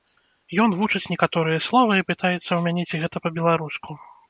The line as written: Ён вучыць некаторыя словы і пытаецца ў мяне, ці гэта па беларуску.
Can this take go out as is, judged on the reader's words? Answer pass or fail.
pass